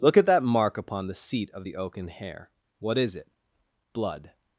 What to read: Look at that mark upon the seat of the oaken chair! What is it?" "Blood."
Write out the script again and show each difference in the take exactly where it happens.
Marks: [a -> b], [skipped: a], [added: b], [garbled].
Look at that mark upon the seat of the oaken [chair! -> hair] What is it?" "Blood."